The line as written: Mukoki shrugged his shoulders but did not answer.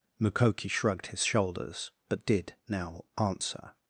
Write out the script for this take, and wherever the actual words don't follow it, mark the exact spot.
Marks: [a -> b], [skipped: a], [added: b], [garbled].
Mukoki shrugged his shoulders but did [not -> now] answer.